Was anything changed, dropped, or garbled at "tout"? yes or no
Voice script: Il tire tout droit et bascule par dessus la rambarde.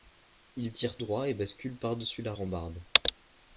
yes